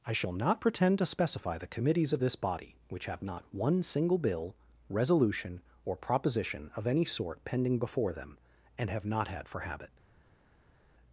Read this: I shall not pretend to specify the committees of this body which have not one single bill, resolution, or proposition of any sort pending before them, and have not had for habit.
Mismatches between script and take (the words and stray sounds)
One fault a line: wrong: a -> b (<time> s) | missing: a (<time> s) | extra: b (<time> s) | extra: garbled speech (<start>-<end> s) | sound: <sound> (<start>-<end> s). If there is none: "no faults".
no faults